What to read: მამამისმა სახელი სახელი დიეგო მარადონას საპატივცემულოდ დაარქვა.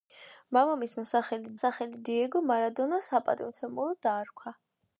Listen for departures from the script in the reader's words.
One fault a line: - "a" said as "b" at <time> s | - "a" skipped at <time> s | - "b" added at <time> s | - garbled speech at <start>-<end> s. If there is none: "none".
none